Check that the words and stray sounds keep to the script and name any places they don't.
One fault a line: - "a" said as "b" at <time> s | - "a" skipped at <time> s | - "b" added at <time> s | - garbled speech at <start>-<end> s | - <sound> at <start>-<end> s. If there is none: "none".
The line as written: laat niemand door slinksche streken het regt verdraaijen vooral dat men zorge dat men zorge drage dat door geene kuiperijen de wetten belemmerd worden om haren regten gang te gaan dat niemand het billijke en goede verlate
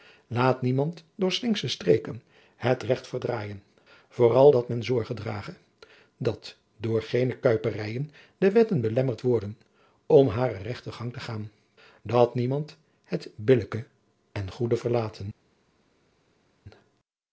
- "dat men zorge" skipped at 5.1 s